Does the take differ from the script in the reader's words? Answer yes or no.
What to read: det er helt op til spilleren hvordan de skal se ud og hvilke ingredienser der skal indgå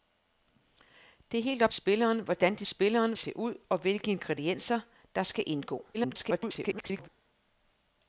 yes